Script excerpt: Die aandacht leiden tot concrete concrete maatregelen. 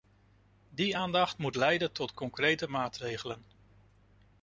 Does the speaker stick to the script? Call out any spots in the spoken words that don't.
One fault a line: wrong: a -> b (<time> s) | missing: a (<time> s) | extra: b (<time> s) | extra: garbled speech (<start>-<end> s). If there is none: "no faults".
extra: moet (1.4 s)
missing: concrete (2.7 s)